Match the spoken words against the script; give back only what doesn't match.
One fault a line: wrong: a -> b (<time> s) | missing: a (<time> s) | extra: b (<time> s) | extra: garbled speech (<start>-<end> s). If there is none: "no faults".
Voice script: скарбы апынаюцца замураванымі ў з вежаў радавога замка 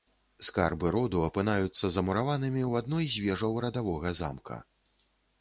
extra: роду (0.9 s)
extra: адной (2.8 s)